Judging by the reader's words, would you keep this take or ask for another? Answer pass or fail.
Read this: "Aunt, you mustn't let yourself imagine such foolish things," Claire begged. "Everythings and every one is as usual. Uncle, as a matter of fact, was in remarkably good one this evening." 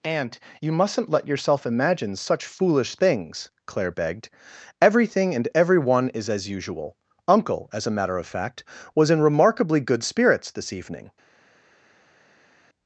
fail